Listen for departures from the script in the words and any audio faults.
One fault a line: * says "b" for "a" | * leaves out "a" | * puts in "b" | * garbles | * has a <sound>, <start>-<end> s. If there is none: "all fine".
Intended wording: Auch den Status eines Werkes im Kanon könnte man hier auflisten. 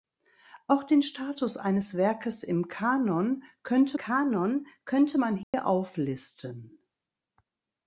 * puts in "Kanon könnte"
* has a dropout, 5.4-5.5 s